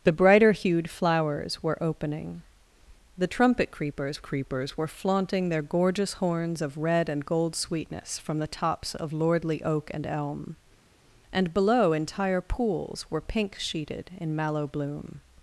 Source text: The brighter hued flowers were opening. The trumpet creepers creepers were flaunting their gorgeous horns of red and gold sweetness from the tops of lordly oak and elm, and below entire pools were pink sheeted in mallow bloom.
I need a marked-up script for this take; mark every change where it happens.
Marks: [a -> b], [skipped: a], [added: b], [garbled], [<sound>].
The brighter hued flowers were opening. The trumpet creepers creepers were flaunting their gorgeous horns of red and gold sweetness from the tops of lordly oak and elm, and below entire pools were pink sheeted in mallow bloom.